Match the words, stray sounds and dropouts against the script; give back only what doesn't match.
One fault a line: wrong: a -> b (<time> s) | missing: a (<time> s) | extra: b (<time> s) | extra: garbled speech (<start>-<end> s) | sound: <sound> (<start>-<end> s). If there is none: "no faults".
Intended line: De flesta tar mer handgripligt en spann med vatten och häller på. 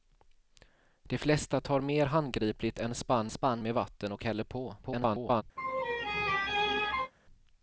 extra: spann (3.3 s)
extra: garbled speech (4.8-5.4 s)
sound: laugh (5.6-7.1 s)